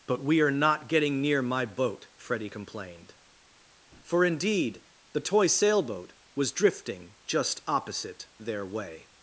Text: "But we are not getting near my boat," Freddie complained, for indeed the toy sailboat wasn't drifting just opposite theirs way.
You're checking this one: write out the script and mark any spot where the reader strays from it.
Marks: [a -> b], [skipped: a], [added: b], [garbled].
"But we are not getting near my boat," Freddie complained, for indeed the toy sailboat [wasn't -> was] drifting just opposite [theirs -> their] way.